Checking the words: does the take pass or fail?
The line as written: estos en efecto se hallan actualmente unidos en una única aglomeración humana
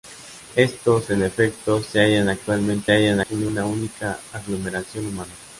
fail